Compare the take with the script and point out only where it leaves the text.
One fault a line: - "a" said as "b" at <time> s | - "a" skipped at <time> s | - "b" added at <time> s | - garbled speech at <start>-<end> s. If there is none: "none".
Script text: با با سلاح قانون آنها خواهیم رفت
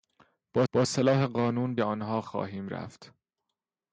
none